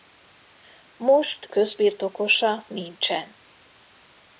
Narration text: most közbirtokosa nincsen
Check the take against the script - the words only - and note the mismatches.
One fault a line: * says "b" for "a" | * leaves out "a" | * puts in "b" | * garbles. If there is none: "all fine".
all fine